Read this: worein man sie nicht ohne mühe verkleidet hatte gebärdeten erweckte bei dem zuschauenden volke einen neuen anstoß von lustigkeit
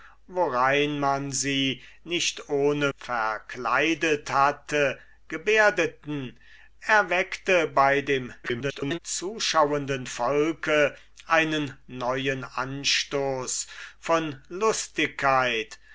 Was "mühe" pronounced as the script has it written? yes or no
no